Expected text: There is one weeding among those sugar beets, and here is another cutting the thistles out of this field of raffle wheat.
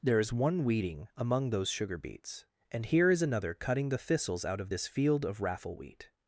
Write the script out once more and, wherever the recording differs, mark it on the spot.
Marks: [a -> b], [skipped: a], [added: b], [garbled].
There is one weeding among those sugar beets, and here is another cutting the thistles out of this field of raffle wheat.